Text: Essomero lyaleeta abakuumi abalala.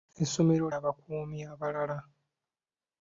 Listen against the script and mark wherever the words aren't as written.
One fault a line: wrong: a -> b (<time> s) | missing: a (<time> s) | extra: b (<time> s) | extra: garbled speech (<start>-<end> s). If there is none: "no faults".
missing: lyaleeta (0.7 s)